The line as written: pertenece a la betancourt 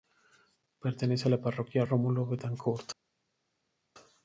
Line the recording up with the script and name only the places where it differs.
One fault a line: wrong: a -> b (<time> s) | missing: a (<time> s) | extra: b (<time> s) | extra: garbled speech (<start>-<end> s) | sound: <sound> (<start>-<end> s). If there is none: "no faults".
extra: parroquia rómulo (1.4 s)